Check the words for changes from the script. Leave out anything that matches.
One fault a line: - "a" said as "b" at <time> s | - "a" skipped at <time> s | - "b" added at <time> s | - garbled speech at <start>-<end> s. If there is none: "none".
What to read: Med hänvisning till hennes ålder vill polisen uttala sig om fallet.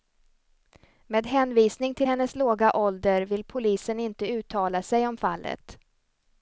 - "låga" added at 2.3 s
- "inte" added at 4.0 s